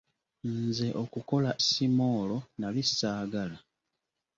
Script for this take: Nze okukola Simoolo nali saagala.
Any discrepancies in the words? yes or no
no